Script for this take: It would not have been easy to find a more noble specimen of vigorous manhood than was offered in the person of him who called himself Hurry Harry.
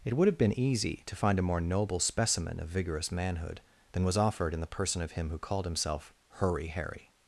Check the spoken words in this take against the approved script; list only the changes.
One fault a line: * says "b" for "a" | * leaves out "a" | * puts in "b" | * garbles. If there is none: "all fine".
* leaves out "not"